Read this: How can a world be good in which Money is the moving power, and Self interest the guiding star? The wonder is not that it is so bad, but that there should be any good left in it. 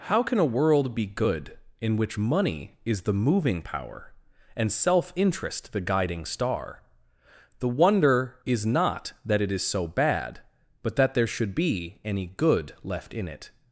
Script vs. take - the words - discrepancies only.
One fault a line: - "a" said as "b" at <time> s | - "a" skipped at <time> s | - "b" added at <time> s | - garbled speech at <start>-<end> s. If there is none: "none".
none